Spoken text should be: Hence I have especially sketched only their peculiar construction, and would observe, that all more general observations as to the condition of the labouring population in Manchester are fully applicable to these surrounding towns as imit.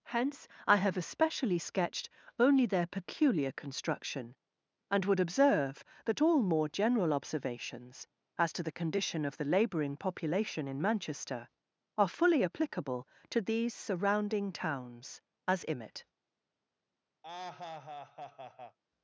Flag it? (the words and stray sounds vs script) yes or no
yes